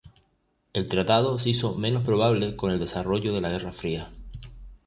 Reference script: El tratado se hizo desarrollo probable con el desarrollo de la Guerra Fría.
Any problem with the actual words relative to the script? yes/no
yes